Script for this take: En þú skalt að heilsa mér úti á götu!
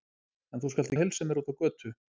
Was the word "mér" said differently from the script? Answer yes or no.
no